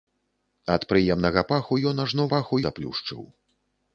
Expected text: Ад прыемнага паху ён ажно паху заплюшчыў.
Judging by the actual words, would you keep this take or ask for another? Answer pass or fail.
pass